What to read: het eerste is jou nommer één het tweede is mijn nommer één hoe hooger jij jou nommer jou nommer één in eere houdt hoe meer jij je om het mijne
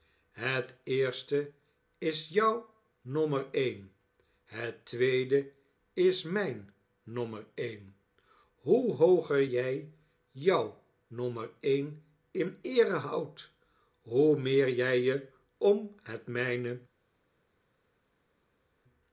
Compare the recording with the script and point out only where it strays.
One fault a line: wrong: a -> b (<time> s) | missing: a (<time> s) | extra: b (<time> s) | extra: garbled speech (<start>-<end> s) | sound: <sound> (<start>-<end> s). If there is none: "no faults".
missing: jou nommer (11.5 s)